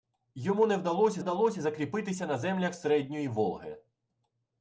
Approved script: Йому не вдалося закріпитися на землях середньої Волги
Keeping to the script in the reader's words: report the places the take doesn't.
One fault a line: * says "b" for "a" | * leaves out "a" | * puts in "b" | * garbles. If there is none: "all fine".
* puts in "вдалося"